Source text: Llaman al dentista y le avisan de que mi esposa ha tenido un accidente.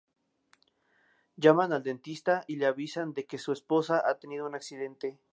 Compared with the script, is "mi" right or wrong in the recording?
wrong